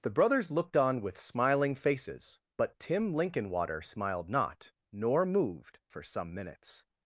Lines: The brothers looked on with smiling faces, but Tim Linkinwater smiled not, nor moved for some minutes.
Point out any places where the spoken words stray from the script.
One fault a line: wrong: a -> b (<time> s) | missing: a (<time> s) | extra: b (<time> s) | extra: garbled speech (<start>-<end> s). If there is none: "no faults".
no faults